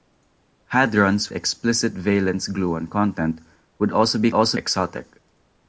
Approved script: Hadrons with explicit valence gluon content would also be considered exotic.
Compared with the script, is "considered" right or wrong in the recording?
wrong